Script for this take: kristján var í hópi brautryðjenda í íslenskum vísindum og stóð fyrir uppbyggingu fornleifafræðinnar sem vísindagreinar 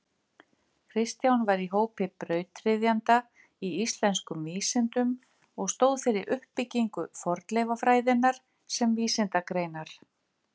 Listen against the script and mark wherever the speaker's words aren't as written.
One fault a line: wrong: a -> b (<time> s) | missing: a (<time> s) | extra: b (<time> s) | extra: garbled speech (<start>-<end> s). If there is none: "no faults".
no faults